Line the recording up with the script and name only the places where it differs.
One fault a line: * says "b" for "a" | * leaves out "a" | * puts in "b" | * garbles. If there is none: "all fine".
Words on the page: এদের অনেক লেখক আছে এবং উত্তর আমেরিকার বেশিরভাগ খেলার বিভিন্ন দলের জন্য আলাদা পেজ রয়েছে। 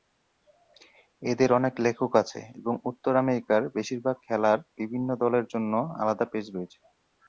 all fine